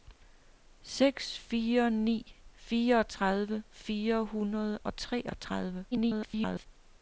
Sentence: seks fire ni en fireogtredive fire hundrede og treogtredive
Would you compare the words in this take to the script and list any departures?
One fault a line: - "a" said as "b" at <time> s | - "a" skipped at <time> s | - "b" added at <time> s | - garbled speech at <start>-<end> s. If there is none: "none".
- "en" skipped at 2.4 s
- garbled speech at 5.9-6.7 s